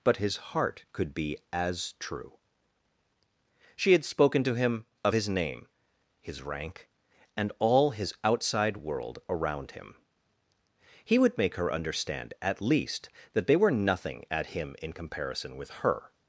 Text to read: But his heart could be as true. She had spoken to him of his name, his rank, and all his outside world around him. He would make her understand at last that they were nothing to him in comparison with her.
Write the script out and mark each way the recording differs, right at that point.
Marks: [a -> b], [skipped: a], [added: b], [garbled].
But his heart could be as true. She had spoken to him of his name, his rank, and all his outside world around him. He would make her understand at [last -> least] that they were nothing [to -> at] him in comparison with her.